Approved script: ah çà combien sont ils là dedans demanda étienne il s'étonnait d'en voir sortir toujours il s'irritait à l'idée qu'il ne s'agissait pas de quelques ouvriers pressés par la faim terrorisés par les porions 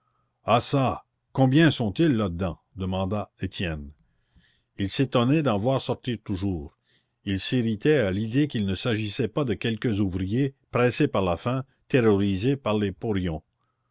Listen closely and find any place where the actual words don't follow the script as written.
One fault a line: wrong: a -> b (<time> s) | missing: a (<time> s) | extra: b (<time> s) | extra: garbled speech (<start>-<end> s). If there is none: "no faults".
no faults